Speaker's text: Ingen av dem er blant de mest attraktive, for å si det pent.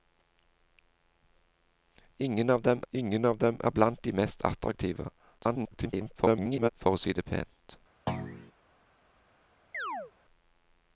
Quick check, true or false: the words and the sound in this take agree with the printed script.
false